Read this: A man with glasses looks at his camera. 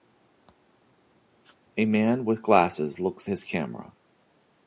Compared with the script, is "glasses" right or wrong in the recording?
right